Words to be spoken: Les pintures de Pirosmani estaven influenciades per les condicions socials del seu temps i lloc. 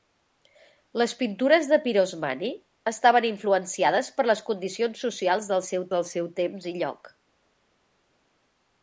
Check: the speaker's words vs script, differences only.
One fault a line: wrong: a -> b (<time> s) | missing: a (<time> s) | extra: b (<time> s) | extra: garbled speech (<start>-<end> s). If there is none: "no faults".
extra: del seu (5.9 s)